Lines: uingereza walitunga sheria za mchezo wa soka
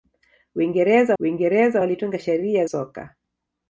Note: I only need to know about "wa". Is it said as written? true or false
false